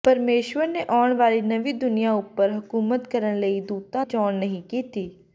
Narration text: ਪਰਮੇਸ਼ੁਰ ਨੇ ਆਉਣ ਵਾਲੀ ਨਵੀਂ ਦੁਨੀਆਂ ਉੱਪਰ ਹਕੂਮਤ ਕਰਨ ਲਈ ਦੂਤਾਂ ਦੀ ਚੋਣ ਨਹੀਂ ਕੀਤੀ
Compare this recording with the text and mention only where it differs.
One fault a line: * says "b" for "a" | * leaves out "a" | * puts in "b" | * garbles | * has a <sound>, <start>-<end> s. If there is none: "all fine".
* leaves out "ਦੀ"